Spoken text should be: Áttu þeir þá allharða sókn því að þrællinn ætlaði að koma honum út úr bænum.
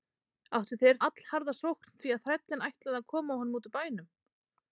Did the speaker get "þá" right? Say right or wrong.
wrong